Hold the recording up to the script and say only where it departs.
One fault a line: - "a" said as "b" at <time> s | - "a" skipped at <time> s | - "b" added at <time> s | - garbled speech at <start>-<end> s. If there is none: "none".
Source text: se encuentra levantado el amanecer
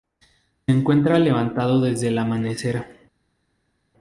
- "desde" added at 1.8 s